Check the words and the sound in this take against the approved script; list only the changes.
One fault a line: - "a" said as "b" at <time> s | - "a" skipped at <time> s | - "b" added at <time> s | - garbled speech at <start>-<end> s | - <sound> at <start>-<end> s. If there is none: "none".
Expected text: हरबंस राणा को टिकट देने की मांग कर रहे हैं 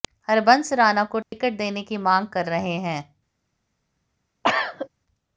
- dropout at 1.2-1.3 s
- cough at 4.4-4.9 s